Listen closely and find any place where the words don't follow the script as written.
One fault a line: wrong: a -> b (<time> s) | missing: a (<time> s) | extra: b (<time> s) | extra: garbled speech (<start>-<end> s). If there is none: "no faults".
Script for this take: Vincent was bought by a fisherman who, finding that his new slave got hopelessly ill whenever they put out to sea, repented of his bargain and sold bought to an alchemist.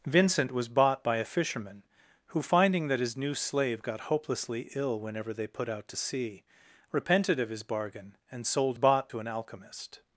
no faults